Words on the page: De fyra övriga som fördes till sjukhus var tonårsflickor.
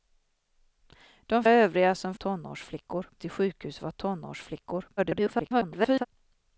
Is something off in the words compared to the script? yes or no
yes